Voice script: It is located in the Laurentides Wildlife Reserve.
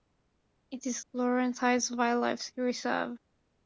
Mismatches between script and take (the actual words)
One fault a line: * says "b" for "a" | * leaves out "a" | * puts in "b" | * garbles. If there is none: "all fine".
* leaves out "located in the"